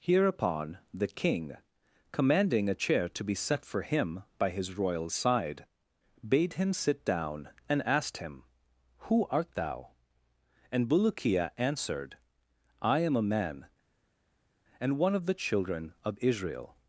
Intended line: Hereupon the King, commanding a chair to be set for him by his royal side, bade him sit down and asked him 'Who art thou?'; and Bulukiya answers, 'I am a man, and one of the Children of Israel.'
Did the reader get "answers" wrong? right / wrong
wrong